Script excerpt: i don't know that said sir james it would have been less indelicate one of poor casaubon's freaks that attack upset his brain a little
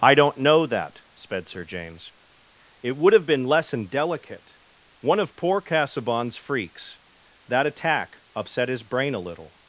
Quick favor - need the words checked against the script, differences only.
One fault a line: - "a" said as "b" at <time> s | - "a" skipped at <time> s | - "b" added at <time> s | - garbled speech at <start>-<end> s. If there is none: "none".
- "said" said as "sped" at 1.1 s